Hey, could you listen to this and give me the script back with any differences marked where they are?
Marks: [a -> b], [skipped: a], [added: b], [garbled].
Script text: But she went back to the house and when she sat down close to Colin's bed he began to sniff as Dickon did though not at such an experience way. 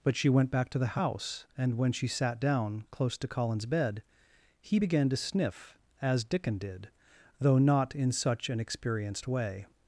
But she went back to the house and when she sat down close to Colin's bed he began to sniff as Dickon did though not [at -> in] such an [experience -> experienced] way.